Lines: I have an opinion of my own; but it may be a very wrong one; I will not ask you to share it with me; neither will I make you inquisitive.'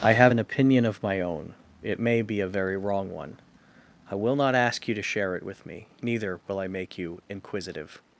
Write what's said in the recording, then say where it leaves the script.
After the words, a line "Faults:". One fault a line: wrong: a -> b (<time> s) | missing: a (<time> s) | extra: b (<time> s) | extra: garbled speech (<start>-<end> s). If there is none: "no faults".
I have an opinion of my own; it may be a very wrong one; I will not ask you to share it with me; neither will I make you inquisitive.'
Faults:
missing: but (1.5 s)